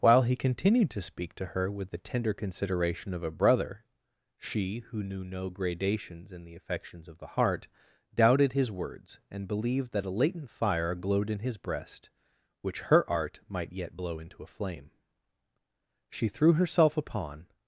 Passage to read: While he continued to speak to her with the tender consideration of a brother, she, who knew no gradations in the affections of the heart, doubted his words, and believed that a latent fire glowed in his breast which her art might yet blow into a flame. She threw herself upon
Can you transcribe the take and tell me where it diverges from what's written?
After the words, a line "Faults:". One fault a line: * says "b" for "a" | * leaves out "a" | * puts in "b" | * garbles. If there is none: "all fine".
While he continued to speak to her with the tender consideration of a brother, she, who knew no gradations in the affections of the heart, doubted his words, and believed that a latent fire glowed in his breast which her art might yet blow into a flame. She threw herself upon
Faults:
all fine